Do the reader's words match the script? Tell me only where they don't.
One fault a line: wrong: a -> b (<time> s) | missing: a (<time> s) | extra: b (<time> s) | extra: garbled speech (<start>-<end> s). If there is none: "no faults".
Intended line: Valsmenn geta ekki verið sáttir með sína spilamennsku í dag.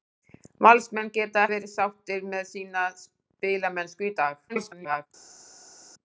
missing: ekki (1.4 s)
extra: garbled speech (4.5-5.1 s)